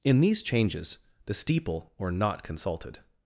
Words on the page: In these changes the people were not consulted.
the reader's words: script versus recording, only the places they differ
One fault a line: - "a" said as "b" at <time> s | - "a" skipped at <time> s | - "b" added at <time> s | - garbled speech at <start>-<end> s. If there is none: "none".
- "people" said as "steeple" at 1.3 s